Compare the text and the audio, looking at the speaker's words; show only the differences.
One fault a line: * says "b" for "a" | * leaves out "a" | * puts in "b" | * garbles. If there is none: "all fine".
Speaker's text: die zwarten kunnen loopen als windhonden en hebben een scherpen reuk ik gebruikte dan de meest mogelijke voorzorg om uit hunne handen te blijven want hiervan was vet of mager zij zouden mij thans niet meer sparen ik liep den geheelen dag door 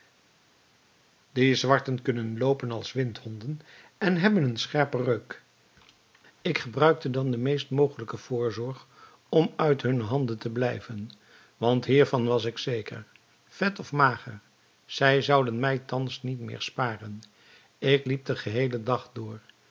* puts in "ik zeker"